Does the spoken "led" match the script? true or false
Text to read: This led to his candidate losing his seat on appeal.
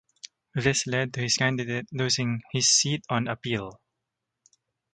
true